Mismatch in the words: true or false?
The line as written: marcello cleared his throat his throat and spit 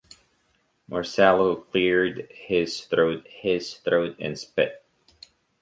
false